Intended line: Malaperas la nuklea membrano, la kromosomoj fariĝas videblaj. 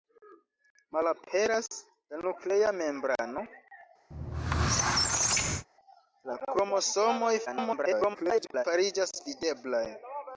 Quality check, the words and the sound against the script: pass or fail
fail